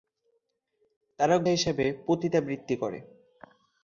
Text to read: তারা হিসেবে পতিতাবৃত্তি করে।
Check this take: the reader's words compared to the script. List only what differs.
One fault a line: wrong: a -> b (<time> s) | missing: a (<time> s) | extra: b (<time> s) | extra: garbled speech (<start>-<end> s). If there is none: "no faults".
no faults